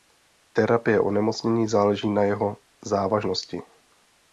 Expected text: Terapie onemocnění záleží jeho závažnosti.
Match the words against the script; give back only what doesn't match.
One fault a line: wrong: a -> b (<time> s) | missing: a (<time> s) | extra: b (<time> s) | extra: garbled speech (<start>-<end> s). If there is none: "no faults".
extra: na (2.1 s)